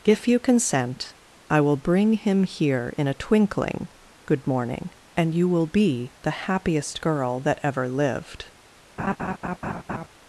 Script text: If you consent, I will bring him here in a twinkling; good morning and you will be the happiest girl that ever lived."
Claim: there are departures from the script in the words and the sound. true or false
true